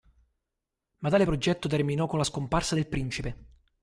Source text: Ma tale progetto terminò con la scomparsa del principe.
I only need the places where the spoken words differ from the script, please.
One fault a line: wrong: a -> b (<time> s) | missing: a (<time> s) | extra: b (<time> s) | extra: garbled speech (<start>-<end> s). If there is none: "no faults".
no faults